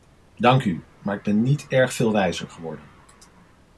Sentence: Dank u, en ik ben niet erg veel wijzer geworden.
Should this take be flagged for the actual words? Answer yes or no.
yes